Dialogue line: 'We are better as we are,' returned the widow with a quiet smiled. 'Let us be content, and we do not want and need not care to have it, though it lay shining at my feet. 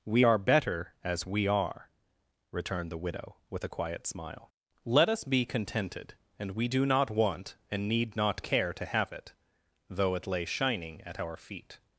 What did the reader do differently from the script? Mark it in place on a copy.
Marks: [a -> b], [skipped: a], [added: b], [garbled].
'We are better as we are,' returned the widow with a quiet [smiled. -> smile] 'Let us be [content, -> contented] and we do not want and need not care to have it, though it lay shining at [my -> our] feet.